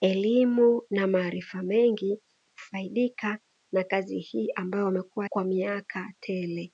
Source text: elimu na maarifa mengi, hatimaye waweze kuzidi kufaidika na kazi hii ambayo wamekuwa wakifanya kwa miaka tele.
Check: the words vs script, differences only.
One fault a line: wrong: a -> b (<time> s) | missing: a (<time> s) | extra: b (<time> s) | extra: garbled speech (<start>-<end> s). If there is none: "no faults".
missing: hatimaye waweze kuzidi (2.2 s)
missing: wakifanya (5.2 s)